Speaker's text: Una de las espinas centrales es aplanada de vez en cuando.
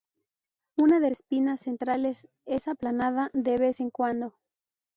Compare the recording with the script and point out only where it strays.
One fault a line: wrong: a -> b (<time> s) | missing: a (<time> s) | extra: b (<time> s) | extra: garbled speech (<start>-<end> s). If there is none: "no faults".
missing: las (1.1 s)